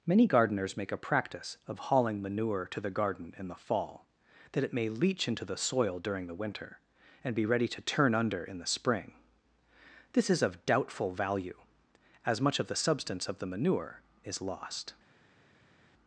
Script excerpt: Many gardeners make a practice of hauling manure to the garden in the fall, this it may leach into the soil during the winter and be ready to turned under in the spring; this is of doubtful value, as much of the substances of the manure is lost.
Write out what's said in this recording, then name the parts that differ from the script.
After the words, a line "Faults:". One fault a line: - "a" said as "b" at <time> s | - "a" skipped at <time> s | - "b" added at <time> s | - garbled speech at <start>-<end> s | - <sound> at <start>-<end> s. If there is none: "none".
Many gardeners make a practice of hauling manure to the garden in the fall, that it may leach into the soil during the winter and be ready to turn under in the spring; this is of doubtful value, as much of the substance of the manure is lost.
Faults:
- "this" said as "that" at 4.5 s
- "turned" said as "turn" at 7.8 s
- "substances" said as "substance" at 12.8 s